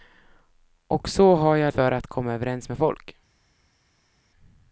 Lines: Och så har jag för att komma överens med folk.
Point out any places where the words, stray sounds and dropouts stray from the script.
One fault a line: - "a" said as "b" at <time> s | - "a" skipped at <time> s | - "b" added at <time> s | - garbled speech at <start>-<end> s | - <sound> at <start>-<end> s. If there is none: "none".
none